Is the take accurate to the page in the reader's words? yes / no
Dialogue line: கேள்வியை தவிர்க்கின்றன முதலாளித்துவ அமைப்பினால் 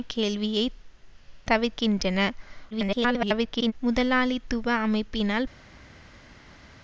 no